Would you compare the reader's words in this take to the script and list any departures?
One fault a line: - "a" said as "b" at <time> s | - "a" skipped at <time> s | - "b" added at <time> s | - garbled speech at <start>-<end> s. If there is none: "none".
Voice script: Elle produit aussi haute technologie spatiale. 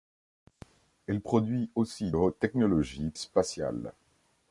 none